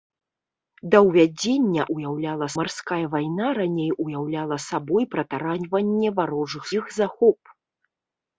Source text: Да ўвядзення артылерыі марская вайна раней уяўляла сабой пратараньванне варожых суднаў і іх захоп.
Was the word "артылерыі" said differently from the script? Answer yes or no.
yes